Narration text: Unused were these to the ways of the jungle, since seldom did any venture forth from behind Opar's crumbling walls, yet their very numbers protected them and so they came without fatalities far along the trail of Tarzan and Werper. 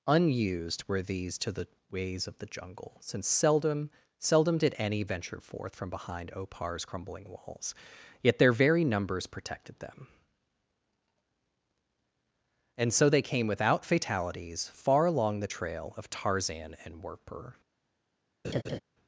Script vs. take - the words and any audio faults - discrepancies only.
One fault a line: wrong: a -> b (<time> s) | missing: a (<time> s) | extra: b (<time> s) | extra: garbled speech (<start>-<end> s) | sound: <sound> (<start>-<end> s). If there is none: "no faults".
extra: seldom (4.2 s)
sound: laugh (18.4-18.8 s)